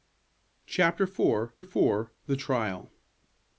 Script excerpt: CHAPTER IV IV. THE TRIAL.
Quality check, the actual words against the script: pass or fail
pass